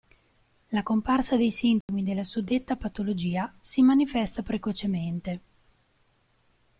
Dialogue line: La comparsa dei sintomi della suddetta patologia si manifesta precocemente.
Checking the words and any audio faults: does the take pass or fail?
fail